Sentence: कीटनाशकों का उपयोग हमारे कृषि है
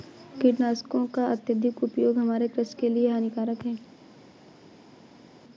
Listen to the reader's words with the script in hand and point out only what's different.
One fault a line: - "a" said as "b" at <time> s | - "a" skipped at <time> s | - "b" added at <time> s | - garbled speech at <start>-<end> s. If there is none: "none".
- "अत्यधिक" added at 1.3 s
- "के लिए हानिकारक" added at 2.8 s